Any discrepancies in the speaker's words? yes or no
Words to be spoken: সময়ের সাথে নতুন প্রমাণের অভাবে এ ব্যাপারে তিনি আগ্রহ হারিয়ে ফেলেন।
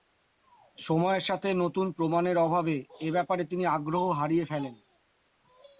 no